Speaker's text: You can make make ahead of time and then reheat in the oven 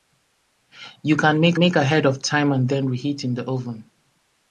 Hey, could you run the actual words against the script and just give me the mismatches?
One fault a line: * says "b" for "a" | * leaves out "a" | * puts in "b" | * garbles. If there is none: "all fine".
all fine